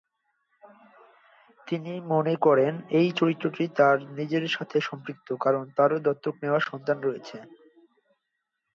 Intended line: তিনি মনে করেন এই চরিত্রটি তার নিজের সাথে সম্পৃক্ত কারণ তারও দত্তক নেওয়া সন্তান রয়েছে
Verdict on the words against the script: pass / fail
pass